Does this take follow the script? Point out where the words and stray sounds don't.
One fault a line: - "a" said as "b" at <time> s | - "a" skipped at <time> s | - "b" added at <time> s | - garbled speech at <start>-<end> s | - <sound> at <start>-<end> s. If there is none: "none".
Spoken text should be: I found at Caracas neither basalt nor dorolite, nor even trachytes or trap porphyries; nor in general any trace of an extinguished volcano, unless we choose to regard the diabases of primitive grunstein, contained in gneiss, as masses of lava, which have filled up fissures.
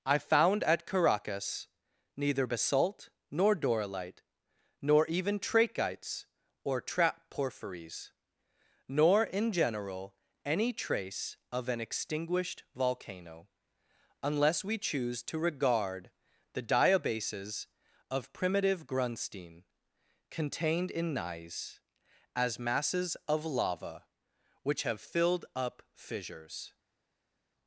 none